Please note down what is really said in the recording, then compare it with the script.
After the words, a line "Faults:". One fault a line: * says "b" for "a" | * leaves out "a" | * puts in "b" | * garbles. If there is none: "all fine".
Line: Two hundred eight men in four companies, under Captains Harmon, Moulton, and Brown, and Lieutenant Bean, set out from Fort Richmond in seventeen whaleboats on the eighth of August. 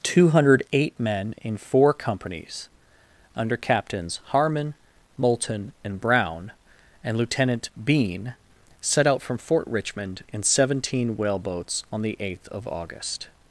Two hundred eight men in four companies, under Captains Harmon, Moulton, and Brown, and Lieutenant Bean, set out from Fort Richmond in seventeen whaleboats on the eighth of August.
Faults:
all fine